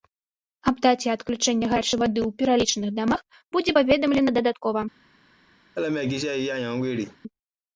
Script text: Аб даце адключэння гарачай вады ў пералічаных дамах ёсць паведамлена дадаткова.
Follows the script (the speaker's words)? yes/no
no